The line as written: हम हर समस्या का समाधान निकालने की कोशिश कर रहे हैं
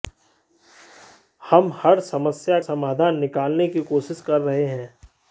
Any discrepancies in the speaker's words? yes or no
yes